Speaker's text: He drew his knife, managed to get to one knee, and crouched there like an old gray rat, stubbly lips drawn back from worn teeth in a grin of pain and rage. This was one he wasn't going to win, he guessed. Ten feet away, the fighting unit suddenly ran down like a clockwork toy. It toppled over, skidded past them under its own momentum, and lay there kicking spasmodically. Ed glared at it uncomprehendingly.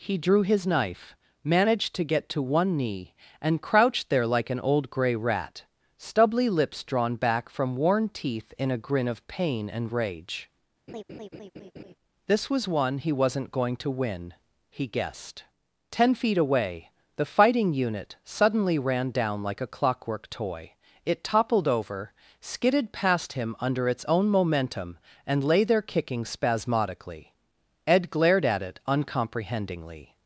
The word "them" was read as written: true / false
false